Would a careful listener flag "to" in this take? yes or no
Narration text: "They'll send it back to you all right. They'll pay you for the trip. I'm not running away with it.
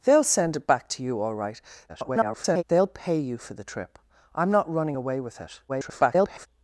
no